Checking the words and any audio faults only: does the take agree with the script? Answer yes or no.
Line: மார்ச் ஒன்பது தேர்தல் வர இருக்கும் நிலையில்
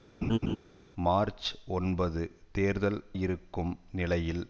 no